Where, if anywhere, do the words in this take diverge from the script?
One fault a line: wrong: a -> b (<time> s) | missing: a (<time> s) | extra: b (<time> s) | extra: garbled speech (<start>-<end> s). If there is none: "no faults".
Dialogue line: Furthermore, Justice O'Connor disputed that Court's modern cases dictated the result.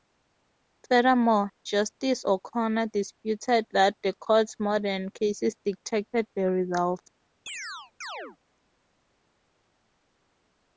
extra: the (4.0 s)